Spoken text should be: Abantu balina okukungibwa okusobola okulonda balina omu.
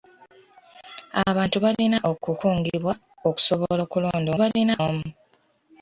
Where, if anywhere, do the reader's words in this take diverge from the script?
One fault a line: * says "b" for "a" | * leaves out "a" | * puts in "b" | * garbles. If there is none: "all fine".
all fine